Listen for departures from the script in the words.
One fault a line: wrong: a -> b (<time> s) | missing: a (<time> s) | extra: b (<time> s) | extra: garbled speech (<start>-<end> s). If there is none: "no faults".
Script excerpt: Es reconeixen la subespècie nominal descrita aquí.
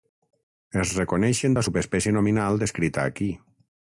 no faults